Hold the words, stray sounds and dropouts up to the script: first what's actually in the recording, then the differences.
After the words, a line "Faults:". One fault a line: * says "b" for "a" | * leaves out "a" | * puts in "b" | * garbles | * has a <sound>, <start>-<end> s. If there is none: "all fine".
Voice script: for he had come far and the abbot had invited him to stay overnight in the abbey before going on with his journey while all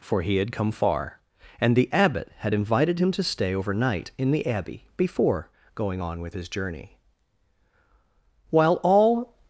for he had come far and the abbot had invited him to stay overnight in the abbey before going on with his journey while all
Faults:
all fine